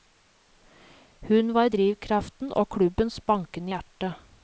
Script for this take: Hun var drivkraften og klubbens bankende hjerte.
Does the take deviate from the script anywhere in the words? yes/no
no